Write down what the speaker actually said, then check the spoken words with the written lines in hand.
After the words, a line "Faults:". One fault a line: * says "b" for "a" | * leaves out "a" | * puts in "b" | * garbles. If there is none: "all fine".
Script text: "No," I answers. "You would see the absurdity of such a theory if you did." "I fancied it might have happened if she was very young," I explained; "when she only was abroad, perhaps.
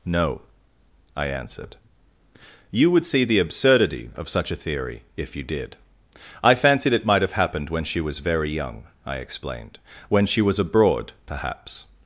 "No," I answered. "You would see the absurdity of such a theory if you did." "I fancied it might have happened when she was very young," I explained; "when she was abroad, perhaps.
Faults:
* says "answered" for "answers"
* says "when" for "if"
* leaves out "only"